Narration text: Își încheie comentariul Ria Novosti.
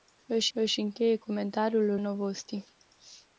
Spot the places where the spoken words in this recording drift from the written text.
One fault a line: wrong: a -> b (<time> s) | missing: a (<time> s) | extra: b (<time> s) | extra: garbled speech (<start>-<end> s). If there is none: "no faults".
extra: își (0.5 s)
missing: Ria (2.0 s)